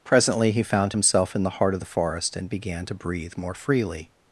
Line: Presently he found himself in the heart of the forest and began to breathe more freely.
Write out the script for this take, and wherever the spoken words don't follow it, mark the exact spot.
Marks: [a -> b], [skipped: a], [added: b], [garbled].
Presently he found himself in the heart of the forest and began to breathe more freely.